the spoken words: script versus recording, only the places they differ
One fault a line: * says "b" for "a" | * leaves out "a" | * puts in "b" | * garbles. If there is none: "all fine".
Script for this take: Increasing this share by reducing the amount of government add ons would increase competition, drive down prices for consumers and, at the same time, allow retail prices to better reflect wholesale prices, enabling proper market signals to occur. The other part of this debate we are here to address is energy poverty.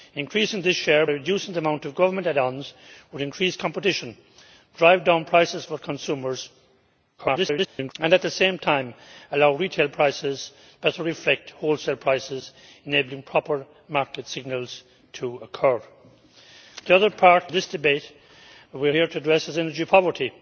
* leaves out "by"
* garbles
* leaves out "of"